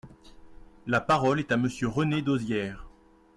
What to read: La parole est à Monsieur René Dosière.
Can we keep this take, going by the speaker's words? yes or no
yes